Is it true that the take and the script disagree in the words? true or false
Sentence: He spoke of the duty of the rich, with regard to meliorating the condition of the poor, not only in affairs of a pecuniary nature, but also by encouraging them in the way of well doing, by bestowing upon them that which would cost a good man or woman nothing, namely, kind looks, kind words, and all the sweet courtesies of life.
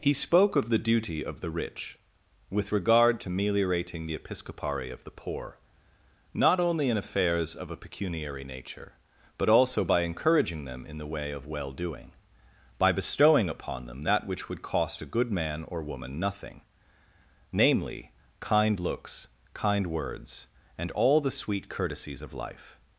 true